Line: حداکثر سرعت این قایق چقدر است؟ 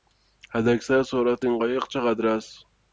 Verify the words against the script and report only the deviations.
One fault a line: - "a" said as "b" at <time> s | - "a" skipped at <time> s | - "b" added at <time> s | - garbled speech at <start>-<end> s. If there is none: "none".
none